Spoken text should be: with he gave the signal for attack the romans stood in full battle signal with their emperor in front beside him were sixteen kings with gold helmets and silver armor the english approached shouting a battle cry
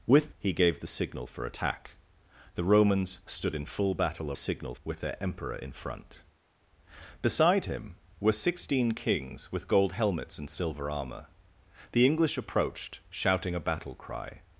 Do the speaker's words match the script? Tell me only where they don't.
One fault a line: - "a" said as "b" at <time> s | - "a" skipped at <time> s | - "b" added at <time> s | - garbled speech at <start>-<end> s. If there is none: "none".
none